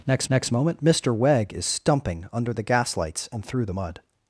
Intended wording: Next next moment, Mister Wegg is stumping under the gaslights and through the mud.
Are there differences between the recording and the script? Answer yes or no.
no